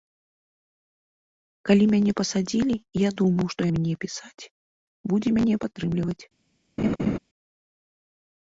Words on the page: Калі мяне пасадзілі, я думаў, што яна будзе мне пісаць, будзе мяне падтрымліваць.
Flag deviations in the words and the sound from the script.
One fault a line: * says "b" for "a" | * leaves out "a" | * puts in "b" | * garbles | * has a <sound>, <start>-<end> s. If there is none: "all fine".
* leaves out "яна будзе"
* has a laugh, 6.8-7.2 s